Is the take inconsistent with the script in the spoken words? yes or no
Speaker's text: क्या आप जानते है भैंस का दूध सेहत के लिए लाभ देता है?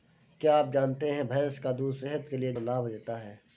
no